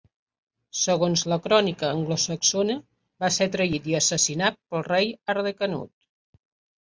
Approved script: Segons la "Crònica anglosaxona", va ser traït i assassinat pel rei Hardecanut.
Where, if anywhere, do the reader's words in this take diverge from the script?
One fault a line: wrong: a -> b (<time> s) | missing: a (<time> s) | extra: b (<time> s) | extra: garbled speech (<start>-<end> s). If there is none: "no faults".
no faults